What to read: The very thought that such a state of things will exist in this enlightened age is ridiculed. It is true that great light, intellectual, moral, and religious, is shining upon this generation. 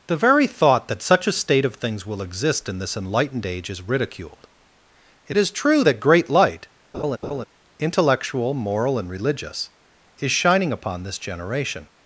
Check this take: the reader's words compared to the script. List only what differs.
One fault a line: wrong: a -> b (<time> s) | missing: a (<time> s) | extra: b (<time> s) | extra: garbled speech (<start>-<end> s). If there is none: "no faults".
no faults